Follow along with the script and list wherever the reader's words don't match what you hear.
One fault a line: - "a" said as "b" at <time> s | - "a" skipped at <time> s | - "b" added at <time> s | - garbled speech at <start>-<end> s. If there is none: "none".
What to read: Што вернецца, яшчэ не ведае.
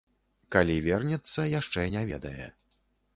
- "Што" said as "Калі" at 0.5 s